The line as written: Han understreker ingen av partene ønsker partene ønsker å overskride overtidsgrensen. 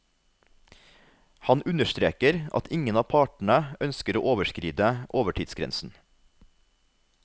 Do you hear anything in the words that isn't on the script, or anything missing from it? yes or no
yes